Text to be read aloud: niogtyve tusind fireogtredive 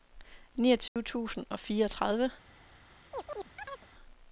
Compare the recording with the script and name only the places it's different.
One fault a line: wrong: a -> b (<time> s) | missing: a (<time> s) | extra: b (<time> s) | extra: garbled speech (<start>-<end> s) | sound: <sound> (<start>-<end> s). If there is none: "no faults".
sound: dropout (0.9-1.0 s)
extra: og (1.5 s)
sound: chirp (3.1-3.9 s)